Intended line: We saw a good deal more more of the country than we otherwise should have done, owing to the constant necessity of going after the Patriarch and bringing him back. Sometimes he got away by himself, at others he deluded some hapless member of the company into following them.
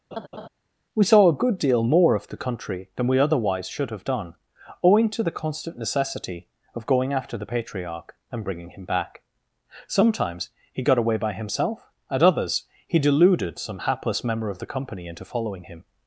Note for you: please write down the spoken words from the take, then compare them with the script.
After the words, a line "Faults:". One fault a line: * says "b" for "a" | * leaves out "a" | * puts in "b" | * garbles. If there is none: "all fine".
We saw a good deal more of the country than we otherwise should have done, owing to the constant necessity of going after the Patriarch and bringing him back. Sometimes he got away by himself, at others he deluded some hapless member of the company into following him.
Faults:
* leaves out "more"
* says "him" for "them"